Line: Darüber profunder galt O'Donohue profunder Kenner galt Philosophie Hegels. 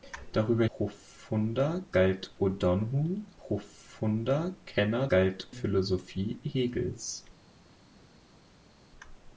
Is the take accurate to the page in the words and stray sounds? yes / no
yes